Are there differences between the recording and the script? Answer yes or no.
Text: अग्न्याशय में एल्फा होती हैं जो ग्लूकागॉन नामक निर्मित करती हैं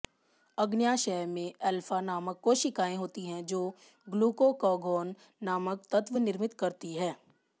yes